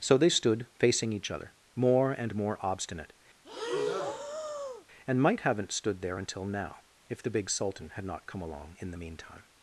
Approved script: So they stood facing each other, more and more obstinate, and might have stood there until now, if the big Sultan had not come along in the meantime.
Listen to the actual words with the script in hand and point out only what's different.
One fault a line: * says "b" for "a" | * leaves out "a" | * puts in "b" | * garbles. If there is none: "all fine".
* says "haven't" for "have"